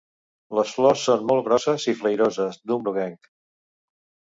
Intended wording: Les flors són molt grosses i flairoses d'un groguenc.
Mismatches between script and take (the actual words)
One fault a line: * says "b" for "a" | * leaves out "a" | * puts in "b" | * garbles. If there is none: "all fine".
all fine